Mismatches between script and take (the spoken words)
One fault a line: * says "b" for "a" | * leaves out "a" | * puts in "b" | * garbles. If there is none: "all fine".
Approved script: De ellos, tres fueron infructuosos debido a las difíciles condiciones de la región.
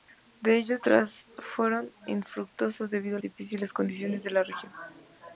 * leaves out "las"